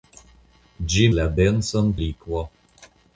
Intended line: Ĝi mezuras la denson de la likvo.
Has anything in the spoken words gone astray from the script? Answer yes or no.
yes